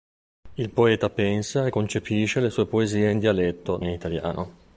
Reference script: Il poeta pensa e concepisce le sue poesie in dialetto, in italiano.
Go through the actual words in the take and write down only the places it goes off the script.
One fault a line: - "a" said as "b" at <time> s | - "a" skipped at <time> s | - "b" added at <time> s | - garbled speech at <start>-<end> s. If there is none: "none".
none